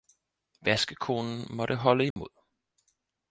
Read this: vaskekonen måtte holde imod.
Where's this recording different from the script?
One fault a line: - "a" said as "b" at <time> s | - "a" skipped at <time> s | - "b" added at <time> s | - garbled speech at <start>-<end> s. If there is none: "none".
none